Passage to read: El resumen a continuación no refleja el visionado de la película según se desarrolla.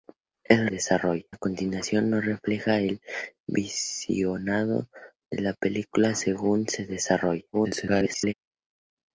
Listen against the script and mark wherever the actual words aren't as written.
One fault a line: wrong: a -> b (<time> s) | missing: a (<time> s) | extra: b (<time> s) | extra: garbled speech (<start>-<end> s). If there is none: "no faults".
wrong: resumen -> desarrolla (0.7 s)
extra: garbled speech (7.5-8.3 s)